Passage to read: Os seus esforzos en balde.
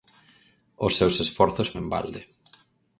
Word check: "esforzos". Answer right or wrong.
right